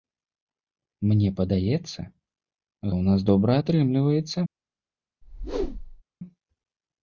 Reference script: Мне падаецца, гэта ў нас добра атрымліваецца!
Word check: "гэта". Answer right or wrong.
wrong